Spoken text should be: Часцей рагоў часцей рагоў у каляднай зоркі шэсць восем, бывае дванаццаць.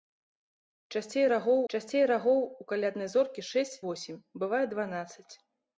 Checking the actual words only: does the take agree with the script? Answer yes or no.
yes